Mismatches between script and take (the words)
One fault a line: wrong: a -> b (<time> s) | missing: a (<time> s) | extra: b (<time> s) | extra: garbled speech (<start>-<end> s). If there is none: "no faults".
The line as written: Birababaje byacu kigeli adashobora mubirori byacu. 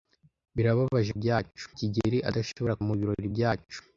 no faults